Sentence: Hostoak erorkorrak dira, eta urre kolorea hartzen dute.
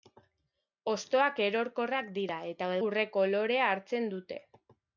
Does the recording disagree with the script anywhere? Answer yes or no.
no